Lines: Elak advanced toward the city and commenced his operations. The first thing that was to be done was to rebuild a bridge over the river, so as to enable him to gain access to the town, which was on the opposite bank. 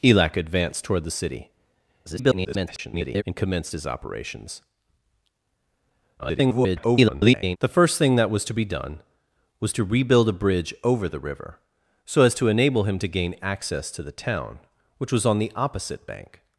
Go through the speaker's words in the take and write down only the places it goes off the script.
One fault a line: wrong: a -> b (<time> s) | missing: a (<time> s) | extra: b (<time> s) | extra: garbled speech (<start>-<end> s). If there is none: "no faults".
extra: garbled speech (2.0-3.2 s)
extra: garbled speech (6.2-7.6 s)